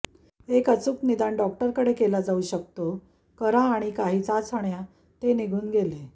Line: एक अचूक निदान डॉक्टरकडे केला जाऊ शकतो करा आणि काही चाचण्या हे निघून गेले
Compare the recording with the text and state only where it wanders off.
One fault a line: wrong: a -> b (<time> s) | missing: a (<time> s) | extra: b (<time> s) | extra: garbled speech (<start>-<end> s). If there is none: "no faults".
wrong: हे -> ते (5.2 s)